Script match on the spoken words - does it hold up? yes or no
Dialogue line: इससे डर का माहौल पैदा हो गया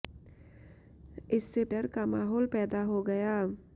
yes